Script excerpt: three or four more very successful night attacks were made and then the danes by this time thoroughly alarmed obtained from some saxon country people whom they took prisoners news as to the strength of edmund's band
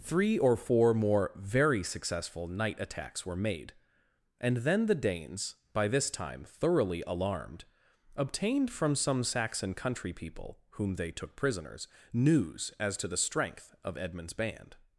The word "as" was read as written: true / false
true